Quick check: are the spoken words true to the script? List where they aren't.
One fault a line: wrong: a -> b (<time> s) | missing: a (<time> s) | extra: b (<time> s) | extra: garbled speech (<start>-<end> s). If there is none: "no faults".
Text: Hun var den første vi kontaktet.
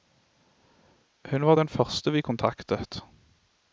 no faults